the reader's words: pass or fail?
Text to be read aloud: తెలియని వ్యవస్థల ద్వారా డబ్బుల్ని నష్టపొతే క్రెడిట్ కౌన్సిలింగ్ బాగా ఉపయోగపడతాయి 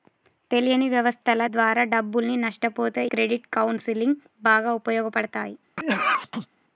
pass